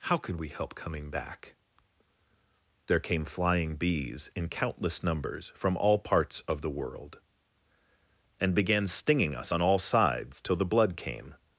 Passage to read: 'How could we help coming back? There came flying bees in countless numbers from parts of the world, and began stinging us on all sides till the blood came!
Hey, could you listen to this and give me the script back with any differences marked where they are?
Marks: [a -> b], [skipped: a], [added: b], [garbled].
'How could we help coming back? There came flying bees in countless numbers from [added: all] parts of the world, and began stinging us on all sides till the blood came!